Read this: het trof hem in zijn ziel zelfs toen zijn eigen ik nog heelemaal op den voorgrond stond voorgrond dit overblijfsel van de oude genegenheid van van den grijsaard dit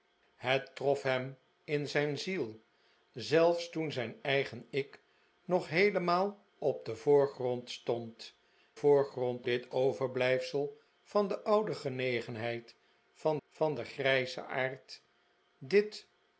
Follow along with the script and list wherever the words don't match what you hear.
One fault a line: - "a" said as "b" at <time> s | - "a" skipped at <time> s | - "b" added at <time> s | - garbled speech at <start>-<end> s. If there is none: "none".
none